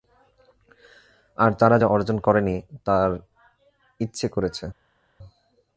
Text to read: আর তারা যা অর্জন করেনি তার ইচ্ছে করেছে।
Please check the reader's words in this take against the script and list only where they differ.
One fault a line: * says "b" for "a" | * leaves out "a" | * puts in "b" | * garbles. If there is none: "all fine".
all fine